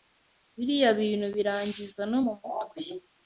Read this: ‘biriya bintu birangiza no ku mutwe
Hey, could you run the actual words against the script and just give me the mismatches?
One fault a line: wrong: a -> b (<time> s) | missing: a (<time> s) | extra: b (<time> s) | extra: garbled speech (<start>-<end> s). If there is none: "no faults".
wrong: ku -> mu (2.2 s)